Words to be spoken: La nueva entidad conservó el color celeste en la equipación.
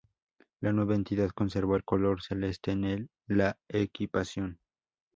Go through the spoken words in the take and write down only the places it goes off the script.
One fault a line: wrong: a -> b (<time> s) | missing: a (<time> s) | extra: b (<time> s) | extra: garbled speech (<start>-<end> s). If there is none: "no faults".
no faults